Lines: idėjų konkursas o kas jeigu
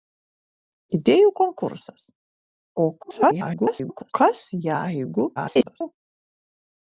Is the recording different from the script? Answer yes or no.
yes